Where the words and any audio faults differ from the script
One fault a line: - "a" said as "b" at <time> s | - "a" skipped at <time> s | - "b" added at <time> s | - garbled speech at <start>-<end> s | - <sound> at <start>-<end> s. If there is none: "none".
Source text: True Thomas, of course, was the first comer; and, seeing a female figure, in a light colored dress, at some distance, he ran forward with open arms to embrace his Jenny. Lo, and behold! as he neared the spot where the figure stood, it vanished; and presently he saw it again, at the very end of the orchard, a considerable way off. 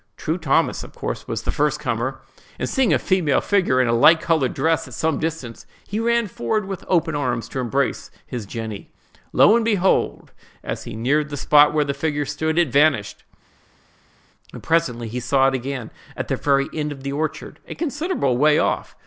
none